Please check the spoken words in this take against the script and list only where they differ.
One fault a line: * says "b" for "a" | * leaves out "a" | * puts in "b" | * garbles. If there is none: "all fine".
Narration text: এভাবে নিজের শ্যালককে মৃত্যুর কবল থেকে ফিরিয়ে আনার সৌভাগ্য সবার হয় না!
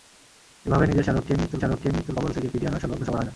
* puts in "শ্যালককে মৃত্যুর"